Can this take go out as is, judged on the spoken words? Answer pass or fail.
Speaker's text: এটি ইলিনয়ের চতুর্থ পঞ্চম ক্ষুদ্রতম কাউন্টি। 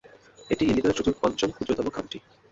pass